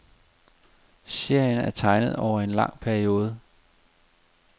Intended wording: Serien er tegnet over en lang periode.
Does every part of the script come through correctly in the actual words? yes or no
yes